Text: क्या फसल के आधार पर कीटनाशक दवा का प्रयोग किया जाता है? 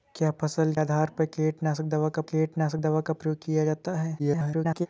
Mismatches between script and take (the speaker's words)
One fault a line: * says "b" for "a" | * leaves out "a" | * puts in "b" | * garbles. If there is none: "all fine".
* leaves out "के"
* puts in "कीटनाशक दवा का"
* garbles